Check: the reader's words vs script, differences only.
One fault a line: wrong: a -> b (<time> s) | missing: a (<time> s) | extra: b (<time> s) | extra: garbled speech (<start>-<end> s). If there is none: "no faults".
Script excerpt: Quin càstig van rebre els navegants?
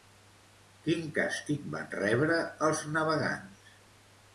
no faults